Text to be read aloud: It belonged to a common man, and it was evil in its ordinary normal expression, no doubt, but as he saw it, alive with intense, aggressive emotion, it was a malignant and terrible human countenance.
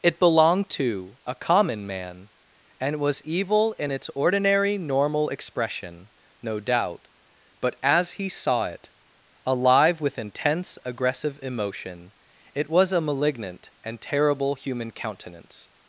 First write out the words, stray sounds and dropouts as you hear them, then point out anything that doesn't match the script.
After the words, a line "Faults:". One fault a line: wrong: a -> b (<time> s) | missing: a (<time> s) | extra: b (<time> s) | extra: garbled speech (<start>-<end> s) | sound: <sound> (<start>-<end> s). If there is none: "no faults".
It belonged to a common man, and was evil in its ordinary normal expression, no doubt, but as he saw it, alive with intense, aggressive emotion, it was a malignant and terrible human countenance.
Faults:
missing: it (3.0 s)